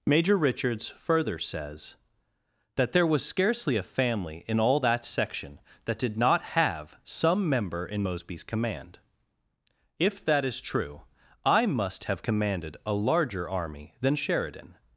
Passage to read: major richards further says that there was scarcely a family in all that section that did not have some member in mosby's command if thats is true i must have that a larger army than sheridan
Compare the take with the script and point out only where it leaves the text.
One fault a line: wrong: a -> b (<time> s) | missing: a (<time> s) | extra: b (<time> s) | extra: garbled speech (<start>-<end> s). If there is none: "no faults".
wrong: thats -> that (10.2 s)
wrong: that -> commanded (12.2 s)